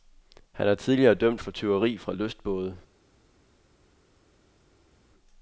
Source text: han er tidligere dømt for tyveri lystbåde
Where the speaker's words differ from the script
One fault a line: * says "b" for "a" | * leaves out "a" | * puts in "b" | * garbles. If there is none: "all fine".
* puts in "fra"